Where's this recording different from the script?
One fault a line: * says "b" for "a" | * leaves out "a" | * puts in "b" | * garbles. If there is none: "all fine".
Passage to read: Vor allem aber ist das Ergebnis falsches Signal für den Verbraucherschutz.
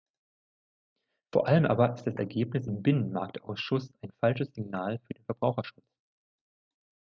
* puts in "im Binnenmarktausschuss ein"